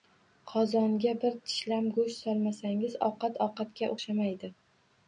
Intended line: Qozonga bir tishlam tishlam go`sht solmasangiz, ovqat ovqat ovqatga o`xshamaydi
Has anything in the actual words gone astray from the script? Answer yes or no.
yes